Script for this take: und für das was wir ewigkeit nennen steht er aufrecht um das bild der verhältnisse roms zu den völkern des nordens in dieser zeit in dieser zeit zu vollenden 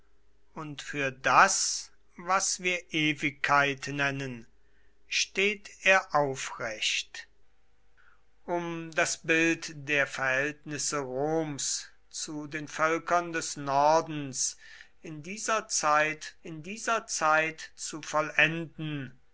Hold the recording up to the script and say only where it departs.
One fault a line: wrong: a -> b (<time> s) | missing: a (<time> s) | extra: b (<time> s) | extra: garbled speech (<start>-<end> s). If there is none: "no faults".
no faults